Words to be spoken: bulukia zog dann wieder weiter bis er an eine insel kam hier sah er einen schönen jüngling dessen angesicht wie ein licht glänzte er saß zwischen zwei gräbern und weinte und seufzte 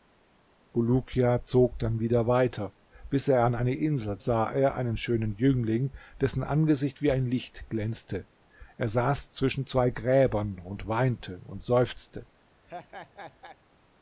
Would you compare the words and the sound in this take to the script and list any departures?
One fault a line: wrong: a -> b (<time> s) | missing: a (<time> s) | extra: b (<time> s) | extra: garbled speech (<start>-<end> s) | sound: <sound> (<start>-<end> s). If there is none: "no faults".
missing: kam hier (4.2 s)
sound: laugh (12.6-13.6 s)